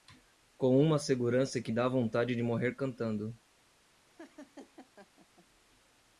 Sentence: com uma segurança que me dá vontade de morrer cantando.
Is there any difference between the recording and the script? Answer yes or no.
yes